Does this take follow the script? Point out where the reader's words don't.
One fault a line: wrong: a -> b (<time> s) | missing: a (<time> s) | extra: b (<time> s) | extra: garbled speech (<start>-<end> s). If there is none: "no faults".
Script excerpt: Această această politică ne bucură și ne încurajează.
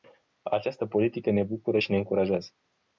missing: această (0.8 s)